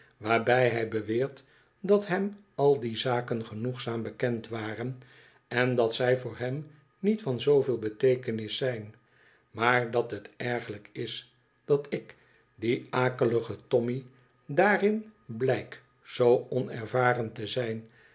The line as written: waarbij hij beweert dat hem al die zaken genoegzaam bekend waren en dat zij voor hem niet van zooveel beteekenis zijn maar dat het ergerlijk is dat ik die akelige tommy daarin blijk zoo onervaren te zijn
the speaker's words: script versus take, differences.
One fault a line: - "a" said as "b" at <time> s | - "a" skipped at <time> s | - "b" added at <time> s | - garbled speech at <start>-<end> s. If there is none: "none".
none